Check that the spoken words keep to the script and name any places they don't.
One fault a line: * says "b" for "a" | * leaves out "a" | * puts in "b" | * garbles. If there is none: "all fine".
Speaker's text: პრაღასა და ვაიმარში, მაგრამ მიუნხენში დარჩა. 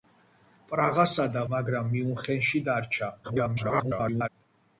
* leaves out "ვაიმარში"
* garbles